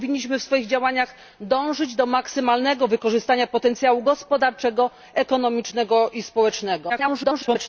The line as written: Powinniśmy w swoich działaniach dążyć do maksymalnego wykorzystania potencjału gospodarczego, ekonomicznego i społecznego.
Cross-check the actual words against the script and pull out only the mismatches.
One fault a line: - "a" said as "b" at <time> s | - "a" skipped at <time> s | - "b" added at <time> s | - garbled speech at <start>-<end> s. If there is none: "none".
- garbled speech at 6.9-7.7 s